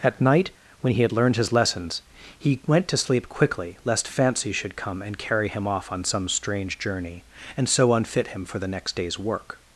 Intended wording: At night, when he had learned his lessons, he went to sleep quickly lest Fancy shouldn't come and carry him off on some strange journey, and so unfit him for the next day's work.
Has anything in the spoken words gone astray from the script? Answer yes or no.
yes